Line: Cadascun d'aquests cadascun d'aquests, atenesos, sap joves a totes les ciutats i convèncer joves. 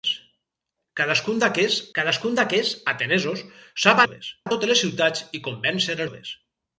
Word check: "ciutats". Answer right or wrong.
right